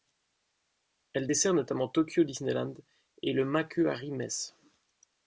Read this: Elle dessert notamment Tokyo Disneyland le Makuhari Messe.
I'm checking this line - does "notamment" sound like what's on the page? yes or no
yes